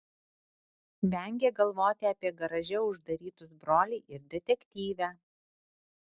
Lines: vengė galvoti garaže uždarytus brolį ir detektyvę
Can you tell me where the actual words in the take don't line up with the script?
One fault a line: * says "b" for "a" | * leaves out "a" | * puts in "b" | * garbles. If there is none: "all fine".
* puts in "apie"